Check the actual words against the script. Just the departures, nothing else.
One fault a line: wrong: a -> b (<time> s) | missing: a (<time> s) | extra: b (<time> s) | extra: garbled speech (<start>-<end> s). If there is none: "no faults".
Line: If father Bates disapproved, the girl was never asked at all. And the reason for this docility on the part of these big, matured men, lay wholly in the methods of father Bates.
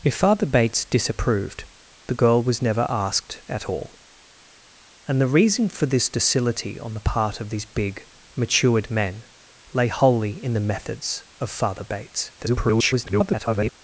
extra: garbled speech (12.4-13.7 s)